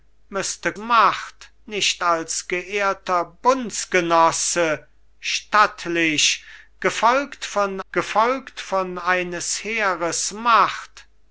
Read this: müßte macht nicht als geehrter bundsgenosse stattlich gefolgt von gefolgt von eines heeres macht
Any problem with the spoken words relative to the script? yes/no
no